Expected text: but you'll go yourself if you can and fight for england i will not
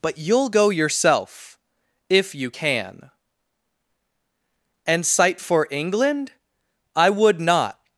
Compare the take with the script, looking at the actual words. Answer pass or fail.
fail